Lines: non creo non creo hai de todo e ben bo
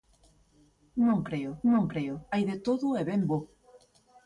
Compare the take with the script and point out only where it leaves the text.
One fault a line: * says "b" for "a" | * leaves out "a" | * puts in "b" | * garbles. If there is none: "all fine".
all fine